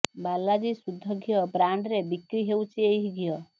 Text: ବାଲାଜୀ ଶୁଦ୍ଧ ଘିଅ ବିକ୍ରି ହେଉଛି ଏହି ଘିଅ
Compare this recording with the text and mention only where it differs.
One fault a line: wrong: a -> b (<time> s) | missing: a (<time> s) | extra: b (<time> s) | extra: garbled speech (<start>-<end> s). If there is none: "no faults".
extra: ବ୍ରାଣ୍ଡରେ (1.5 s)